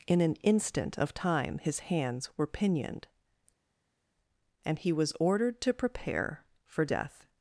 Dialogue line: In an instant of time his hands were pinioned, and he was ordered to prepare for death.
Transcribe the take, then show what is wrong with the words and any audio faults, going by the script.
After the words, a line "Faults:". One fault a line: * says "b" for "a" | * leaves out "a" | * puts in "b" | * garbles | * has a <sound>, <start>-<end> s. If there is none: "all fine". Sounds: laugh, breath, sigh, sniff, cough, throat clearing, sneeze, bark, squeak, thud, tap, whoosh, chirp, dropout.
In an instant of time his hands were pinioned, and he was ordered to prepare for death.
Faults:
all fine